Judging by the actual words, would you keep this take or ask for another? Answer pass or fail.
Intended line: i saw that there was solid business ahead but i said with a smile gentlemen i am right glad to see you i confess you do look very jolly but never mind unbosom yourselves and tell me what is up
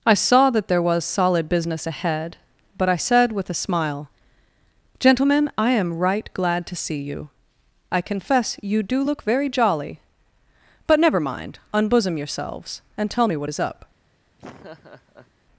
pass